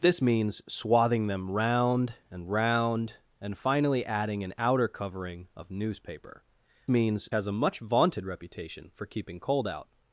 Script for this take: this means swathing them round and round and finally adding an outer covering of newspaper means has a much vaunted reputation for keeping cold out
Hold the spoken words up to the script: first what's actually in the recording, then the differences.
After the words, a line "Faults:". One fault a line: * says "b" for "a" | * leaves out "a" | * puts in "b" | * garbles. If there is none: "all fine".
this means swathing them round and round and finally adding an outer covering of newspaper means has a much vaunted reputation for keeping cold out
Faults:
all fine